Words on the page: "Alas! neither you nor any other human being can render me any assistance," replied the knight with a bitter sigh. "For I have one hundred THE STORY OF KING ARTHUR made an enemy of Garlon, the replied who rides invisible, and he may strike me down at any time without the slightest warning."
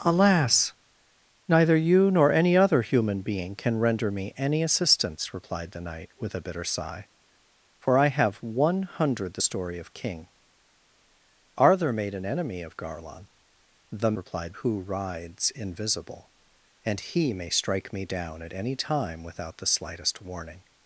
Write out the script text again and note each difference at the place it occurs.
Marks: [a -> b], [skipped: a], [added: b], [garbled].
"Alas! neither you nor any other human being can render me any assistance," replied the knight with a bitter sigh. "For I have one hundred THE STORY OF KING ARTHUR made an enemy of Garlon, the replied who rides invisible, and he may strike me down at any time without the slightest warning."